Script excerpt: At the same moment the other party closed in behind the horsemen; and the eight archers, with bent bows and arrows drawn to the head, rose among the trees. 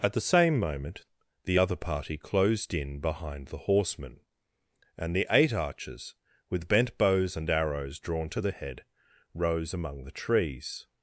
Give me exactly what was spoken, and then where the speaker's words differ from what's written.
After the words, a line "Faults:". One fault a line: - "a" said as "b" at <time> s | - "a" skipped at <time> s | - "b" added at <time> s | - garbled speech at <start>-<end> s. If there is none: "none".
At the same moment the other party closed in behind the horsemen; and the eight archers, with bent bows and arrows drawn to the head, rose among the trees.
Faults:
none